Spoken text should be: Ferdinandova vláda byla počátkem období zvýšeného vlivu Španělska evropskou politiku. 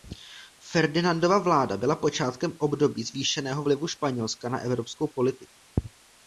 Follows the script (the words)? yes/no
no